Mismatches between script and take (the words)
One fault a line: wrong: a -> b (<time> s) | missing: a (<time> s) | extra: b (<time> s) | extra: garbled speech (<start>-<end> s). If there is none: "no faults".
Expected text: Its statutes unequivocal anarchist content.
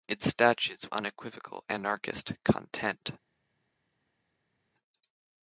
no faults